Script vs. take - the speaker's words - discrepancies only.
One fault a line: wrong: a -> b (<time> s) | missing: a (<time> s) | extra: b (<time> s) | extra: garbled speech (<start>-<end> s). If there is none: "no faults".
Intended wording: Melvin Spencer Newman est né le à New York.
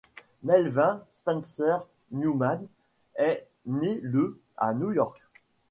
no faults